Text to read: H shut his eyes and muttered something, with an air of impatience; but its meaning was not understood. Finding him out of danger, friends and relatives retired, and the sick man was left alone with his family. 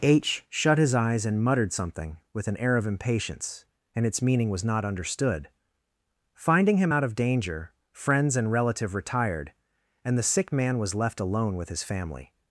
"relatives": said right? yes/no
no